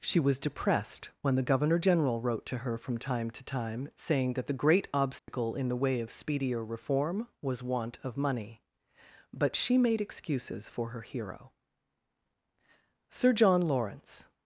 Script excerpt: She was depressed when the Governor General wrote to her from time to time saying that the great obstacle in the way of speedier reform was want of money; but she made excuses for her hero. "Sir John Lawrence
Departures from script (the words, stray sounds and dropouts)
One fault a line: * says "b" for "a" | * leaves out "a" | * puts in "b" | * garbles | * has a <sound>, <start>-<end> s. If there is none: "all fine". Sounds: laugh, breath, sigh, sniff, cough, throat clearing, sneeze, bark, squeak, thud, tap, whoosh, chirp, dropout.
* has a dropout, 5.2-5.3 s